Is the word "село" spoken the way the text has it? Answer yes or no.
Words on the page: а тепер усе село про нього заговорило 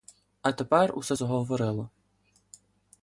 no